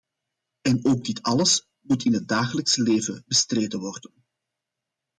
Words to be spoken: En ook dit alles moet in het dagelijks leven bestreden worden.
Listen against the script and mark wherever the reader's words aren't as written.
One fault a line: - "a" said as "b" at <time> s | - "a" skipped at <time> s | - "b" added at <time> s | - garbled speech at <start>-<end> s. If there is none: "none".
none